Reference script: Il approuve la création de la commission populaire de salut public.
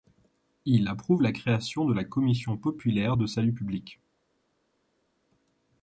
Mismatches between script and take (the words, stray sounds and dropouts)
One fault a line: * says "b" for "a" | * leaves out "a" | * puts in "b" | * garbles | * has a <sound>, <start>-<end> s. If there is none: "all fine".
all fine